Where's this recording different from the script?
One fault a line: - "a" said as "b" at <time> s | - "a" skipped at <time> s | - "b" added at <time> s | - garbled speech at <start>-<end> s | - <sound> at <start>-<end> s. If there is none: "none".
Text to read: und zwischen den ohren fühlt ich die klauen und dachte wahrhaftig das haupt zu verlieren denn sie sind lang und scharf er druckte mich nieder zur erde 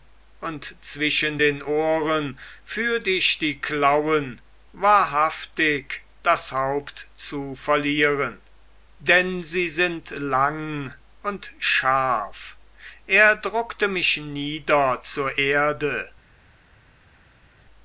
- "und dachte" skipped at 4.4 s